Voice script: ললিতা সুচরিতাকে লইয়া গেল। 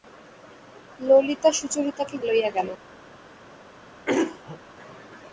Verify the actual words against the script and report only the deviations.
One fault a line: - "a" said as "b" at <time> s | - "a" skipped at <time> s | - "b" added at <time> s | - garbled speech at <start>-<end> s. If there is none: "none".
none